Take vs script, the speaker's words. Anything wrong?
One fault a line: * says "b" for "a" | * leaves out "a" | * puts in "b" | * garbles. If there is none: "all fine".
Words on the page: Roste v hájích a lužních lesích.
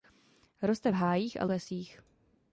* leaves out "lužních"